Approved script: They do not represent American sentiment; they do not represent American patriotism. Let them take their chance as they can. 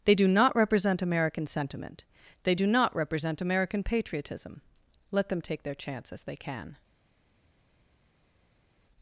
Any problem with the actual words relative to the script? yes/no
no